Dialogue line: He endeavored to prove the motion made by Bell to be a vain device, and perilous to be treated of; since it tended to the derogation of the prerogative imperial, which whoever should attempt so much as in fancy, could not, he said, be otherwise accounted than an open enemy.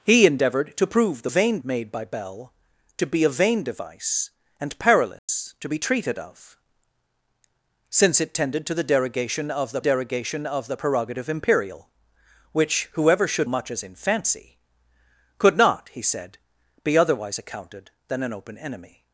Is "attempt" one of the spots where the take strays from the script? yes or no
yes